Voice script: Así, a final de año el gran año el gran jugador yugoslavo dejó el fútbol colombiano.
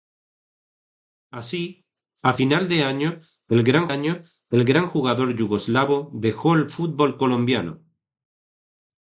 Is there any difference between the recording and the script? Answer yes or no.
no